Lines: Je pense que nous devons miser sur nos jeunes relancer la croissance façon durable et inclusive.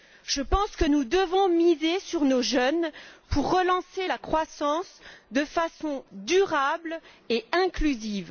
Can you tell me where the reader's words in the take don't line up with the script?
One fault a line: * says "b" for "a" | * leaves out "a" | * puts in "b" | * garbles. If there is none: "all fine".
* puts in "pour"
* puts in "de"